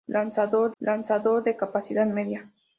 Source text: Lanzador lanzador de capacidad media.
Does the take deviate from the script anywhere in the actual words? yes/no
no